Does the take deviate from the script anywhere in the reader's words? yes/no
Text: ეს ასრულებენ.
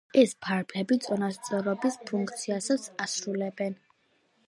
yes